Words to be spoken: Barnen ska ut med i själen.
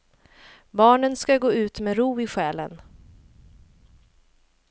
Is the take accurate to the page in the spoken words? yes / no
no